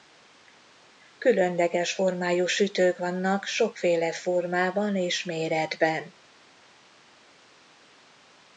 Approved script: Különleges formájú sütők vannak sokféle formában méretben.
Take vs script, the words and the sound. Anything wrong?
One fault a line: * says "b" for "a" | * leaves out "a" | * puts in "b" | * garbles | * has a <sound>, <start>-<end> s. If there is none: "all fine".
* puts in "és"